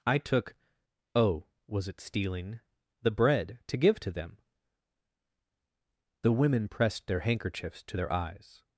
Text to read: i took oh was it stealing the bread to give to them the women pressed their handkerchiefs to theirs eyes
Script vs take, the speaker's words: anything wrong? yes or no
yes